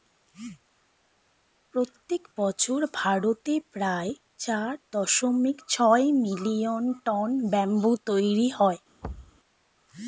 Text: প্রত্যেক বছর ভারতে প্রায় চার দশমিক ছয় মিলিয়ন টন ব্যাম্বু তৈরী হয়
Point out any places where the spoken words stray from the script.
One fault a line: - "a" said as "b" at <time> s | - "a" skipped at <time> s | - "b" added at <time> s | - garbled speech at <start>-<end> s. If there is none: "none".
none